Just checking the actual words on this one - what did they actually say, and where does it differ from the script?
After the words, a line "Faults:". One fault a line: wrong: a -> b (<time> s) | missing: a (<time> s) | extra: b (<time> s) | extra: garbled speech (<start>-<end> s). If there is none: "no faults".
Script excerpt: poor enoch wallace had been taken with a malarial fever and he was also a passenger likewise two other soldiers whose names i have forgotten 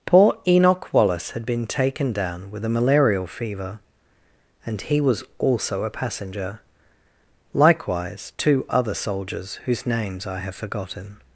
poor enoch wallace had been taken down with a malarial fever and he was also a passenger likewise two other soldiers whose names i have forgotten
Faults:
extra: down (2.1 s)